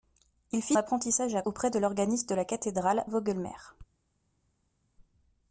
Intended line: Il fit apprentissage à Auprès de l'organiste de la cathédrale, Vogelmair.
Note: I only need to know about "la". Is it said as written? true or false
true